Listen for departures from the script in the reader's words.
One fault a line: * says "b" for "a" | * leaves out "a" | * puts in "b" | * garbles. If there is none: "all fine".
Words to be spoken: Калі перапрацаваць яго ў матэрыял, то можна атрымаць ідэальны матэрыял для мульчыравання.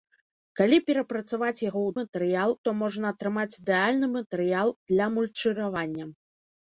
all fine